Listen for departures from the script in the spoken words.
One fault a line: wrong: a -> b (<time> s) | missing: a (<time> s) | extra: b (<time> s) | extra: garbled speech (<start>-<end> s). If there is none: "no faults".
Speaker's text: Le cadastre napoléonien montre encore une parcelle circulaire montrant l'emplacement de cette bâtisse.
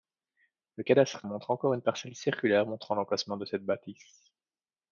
missing: napoléonien (1.3 s)